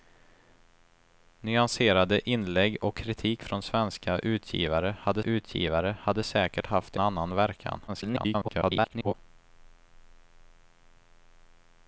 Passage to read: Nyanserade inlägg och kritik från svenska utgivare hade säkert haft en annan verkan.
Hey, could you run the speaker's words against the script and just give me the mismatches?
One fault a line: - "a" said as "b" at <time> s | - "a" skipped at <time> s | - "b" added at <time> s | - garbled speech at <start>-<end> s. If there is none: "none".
- "utgivare hade" added at 5.2 s
- "en" skipped at 7.0 s
- garbled speech at 7.9-9.1 s